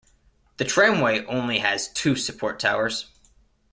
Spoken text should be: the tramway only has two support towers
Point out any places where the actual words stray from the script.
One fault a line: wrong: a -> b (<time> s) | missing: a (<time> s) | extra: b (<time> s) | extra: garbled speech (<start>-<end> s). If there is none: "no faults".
no faults